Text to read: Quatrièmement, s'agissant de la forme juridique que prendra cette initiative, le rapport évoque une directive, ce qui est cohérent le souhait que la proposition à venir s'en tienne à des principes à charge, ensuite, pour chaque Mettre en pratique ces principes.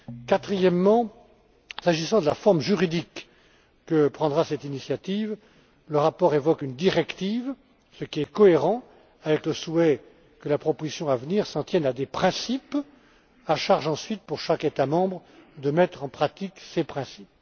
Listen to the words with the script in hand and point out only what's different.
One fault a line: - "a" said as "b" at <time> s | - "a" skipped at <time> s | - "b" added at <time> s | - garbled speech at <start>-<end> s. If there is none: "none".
- "avec" added at 9.2 s
- "État membre de" added at 14.6 s